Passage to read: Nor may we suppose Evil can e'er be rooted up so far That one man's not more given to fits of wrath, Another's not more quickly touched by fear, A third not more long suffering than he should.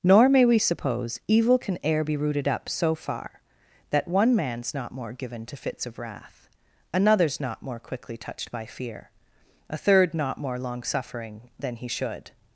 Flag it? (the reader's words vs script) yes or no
no